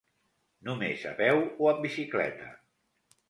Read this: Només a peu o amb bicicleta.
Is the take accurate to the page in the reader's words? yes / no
yes